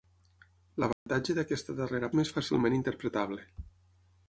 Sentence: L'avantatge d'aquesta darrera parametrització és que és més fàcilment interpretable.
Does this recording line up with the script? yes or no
no